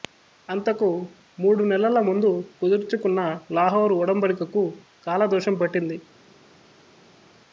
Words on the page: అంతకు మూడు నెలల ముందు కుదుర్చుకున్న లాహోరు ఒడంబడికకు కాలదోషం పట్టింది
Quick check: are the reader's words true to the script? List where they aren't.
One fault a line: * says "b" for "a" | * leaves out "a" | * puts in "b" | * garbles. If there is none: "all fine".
all fine